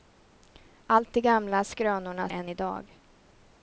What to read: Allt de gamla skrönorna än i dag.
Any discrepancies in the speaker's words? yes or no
no